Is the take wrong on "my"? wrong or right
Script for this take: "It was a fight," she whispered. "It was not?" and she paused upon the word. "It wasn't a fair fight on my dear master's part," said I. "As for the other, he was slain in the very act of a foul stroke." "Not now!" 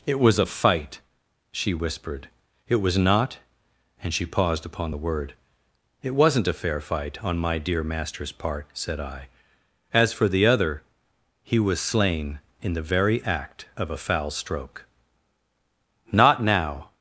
right